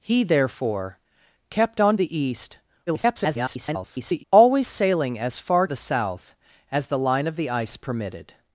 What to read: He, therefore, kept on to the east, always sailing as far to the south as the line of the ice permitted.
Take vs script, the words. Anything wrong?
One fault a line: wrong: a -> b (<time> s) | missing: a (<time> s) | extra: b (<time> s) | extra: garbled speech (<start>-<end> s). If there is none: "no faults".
missing: to (2.0 s)
extra: garbled speech (2.9-4.2 s)
missing: to (5.7 s)